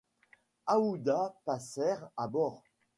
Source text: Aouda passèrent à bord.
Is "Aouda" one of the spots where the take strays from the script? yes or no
no